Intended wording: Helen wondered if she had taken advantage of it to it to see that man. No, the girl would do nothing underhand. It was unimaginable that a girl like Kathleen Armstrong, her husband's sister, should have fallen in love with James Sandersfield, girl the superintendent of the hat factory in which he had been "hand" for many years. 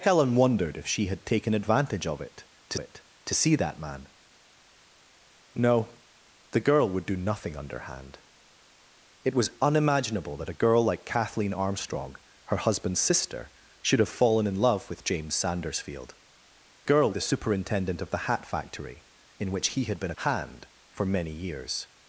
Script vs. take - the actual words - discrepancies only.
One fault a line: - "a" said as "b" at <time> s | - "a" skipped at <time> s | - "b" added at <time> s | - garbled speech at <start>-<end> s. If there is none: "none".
none